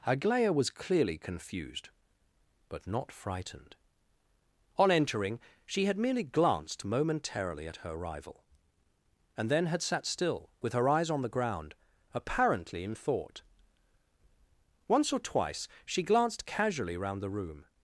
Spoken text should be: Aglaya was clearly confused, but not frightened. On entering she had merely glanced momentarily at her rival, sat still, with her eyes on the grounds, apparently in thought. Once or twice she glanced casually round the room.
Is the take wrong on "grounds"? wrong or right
wrong